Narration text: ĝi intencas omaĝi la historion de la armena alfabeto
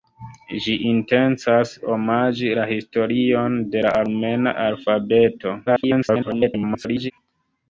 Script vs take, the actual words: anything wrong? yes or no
yes